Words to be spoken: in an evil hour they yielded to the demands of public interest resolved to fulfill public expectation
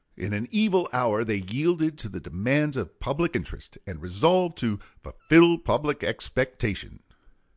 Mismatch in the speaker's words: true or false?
true